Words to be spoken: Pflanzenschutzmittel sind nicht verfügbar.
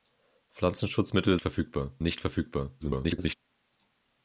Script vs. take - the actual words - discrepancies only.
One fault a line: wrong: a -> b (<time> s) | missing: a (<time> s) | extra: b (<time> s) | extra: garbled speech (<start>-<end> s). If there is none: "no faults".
wrong: sind -> verfügbar (1.4 s)
extra: garbled speech (2.8-3.4 s)